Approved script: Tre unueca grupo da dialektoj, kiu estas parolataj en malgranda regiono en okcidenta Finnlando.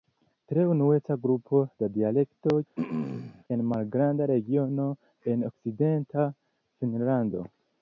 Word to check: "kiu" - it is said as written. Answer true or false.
false